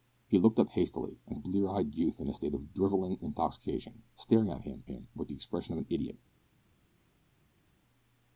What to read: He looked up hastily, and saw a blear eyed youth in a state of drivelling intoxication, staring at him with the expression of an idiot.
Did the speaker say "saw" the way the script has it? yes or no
no